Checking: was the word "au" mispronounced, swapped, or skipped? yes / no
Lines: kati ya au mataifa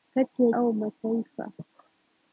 no